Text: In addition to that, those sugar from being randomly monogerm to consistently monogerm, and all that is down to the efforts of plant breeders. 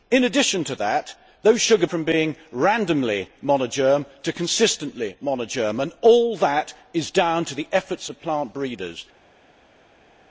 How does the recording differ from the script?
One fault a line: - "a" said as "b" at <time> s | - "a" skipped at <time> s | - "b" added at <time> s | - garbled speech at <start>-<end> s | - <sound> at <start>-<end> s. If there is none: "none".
none